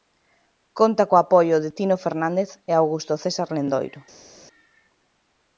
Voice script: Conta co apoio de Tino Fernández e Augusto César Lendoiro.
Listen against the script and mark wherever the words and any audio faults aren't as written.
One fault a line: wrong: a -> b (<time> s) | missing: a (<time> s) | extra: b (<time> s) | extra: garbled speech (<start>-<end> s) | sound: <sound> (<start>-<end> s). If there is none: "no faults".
no faults